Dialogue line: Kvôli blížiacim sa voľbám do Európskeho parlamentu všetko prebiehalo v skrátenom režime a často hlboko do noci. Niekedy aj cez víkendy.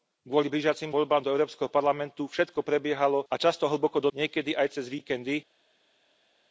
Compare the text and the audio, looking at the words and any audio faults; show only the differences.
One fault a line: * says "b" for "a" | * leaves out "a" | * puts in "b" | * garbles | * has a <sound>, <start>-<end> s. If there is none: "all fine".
* leaves out "sa"
* leaves out "v skrátenom režime"
* leaves out "noci"